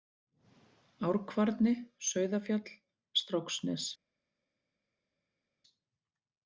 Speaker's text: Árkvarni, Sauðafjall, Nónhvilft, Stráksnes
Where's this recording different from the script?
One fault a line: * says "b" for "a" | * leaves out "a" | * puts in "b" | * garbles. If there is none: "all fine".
* leaves out "Nónhvilft"